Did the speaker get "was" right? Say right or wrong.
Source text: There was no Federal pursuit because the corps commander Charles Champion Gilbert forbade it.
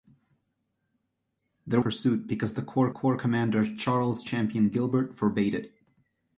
wrong